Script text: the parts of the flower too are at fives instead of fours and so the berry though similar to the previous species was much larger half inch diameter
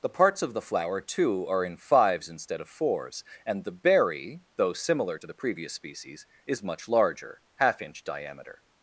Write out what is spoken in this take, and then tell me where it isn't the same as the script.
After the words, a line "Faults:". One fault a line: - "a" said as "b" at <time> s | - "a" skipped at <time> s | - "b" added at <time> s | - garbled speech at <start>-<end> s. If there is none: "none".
the parts of the flower too are in fives instead of fours and the berry though similar to the previous species is much larger half inch diameter
Faults:
- "at" said as "in" at 1.6 s
- "so" skipped at 3.6 s
- "was" said as "is" at 6.5 s